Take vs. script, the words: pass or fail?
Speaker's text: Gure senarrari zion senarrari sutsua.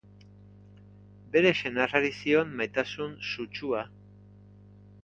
fail